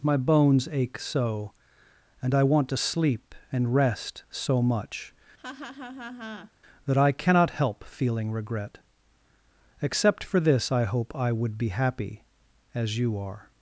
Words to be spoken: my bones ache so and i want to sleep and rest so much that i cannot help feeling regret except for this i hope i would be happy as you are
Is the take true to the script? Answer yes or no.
yes